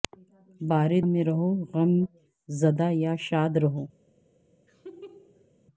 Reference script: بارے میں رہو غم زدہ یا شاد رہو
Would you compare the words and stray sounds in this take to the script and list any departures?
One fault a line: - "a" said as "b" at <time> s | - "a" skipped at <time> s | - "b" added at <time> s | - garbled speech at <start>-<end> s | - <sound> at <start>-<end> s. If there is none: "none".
- laugh at 4.7-5.5 s